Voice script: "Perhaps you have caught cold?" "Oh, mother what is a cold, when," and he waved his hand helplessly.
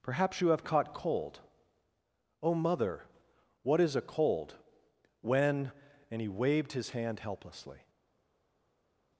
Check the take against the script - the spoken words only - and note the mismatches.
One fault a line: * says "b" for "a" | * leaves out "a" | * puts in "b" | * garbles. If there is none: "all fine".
all fine